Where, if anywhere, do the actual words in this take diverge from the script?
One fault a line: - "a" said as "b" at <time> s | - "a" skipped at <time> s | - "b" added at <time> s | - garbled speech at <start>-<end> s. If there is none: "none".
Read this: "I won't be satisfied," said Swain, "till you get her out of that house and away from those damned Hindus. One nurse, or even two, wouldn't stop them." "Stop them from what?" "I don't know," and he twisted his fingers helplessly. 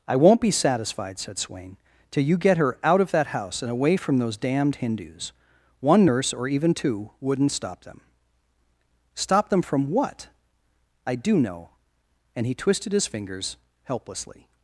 - "don't" said as "do" at 11.2 s